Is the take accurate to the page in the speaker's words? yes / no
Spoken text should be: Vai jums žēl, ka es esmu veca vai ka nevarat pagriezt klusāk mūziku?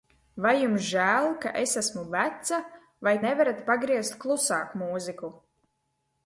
no